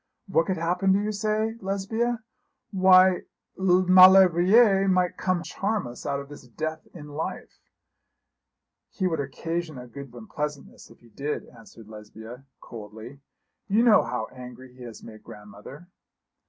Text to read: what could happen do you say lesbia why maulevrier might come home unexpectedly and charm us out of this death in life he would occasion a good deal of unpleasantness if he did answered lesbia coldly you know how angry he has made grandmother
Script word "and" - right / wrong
wrong